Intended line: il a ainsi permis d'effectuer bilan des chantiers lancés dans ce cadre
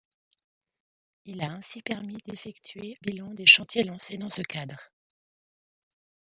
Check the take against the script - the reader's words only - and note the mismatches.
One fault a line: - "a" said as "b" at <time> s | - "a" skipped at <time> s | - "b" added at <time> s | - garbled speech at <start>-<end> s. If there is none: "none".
none